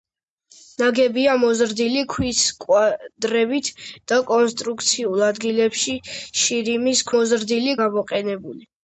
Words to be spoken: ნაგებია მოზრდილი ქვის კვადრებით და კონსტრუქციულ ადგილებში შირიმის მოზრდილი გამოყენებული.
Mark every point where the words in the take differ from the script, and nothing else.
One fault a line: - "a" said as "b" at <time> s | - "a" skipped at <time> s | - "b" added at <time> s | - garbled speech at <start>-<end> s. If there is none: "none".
none